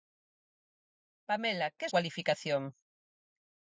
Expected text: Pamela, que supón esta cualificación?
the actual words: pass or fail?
fail